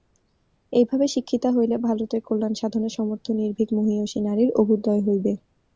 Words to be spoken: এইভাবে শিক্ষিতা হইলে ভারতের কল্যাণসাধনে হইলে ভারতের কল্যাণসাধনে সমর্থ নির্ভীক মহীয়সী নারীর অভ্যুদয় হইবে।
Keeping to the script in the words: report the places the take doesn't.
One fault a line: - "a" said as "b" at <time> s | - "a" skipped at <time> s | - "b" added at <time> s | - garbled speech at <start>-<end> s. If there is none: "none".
- "হইলে ভারতের কল্যাণসাধনে" skipped at 2.9 s